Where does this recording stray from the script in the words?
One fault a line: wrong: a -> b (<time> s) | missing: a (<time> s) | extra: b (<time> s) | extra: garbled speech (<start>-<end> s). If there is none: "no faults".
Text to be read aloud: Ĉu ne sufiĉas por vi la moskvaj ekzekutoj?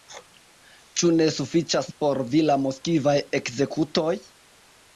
no faults